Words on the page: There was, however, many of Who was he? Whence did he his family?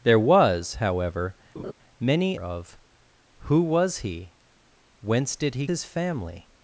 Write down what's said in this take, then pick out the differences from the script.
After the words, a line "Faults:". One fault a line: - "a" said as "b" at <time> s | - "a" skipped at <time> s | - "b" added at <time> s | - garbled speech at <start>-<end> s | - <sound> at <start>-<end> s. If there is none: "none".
There was, however, many of Who was he? Whence did he his family?
Faults:
- laugh at 1.6-1.7 s